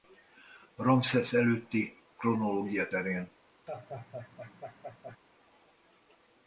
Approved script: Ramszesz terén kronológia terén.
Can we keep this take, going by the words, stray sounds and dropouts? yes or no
no